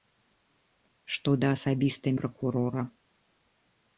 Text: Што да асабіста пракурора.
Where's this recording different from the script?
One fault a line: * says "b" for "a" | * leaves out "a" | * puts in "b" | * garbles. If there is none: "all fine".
all fine